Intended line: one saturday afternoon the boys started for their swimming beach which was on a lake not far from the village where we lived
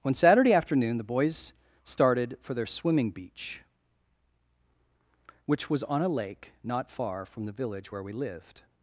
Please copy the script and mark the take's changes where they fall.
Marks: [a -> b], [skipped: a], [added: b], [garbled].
one saturday afternoon the boys started for their swimming beach which was on a lake not far from the village where we lived